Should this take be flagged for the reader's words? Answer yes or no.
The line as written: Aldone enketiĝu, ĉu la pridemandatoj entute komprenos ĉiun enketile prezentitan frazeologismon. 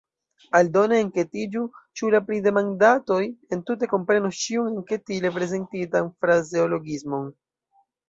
no